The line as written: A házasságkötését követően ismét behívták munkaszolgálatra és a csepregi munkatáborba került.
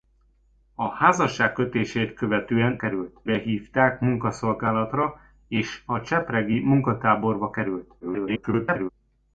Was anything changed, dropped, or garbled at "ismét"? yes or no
yes